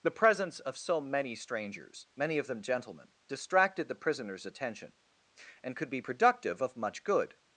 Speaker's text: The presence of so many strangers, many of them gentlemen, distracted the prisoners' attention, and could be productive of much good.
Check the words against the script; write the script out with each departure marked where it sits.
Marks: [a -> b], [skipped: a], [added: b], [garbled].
The presence of so many strangers, many of them gentlemen, distracted the prisoners' attention, and could be productive of much good.